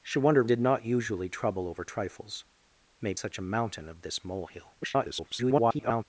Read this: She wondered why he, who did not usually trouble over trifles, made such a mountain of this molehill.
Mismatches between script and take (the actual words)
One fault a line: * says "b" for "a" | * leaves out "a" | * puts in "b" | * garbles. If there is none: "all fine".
* leaves out "why he who"
* garbles